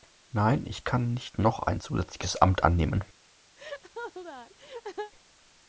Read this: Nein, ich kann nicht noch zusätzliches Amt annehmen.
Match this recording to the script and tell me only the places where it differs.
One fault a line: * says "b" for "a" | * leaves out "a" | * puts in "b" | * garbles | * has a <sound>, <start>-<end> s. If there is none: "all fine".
* puts in "ein"
* has a laugh, 3.6-5.1 s